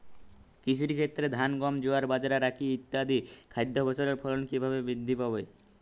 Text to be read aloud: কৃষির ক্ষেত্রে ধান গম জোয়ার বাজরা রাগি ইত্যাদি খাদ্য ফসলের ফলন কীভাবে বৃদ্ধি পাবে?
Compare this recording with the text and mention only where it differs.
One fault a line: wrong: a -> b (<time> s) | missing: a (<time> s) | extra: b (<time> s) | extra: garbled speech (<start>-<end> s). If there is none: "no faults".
no faults